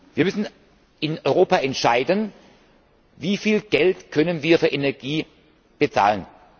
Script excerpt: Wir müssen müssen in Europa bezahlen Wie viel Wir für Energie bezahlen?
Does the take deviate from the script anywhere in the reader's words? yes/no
yes